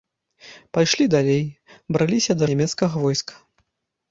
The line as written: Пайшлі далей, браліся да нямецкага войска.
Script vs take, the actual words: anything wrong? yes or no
no